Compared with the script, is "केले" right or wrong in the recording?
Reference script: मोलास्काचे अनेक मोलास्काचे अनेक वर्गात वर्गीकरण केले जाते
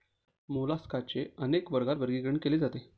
right